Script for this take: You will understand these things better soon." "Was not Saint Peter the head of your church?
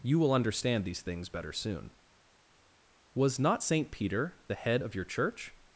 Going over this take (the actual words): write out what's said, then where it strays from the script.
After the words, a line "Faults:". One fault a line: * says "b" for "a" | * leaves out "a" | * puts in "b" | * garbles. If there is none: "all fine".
You will understand these things better soon." "Was not Saint Peter the head of your church?
Faults:
all fine